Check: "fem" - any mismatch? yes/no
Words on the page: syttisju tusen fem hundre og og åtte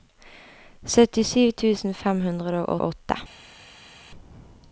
no